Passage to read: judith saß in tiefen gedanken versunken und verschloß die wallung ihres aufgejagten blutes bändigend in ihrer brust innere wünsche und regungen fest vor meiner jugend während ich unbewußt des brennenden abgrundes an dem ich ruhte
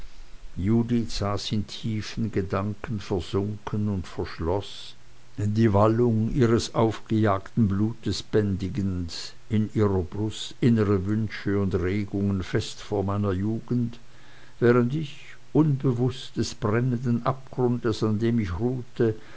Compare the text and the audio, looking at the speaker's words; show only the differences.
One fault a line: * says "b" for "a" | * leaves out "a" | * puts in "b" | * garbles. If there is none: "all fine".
all fine